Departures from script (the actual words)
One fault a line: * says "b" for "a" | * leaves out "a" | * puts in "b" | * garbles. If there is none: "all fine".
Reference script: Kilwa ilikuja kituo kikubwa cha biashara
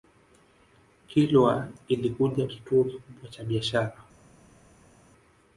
all fine